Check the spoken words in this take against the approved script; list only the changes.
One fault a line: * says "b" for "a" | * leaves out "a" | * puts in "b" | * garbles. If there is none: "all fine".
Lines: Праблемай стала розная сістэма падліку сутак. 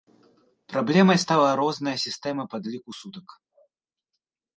all fine